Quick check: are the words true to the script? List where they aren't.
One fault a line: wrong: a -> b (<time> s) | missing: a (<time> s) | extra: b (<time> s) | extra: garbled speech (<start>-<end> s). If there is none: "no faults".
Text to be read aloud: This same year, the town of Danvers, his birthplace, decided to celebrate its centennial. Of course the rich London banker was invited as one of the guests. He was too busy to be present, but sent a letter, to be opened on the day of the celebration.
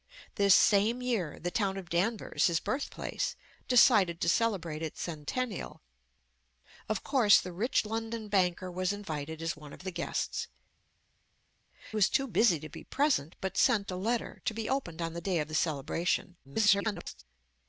missing: He (10.5 s)
extra: garbled speech (16.4-17.2 s)